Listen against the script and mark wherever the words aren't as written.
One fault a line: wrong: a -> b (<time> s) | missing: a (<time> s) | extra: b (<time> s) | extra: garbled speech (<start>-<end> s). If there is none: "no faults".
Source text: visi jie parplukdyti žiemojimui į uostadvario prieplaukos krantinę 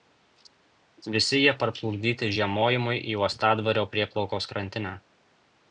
no faults